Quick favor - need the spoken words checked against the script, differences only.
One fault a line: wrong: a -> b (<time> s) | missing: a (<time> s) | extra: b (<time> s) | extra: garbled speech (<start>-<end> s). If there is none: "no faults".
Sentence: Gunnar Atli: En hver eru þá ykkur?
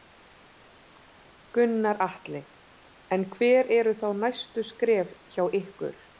extra: næstu skref hjá (4.2 s)